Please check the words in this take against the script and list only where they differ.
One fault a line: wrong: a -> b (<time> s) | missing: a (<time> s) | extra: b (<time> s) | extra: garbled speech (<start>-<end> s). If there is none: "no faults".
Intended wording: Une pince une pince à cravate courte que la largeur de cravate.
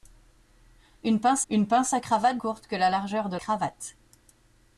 no faults